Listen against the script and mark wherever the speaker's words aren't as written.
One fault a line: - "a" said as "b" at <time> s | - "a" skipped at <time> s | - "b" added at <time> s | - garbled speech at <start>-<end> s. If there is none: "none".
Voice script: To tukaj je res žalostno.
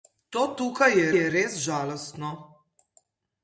- "je" added at 1.2 s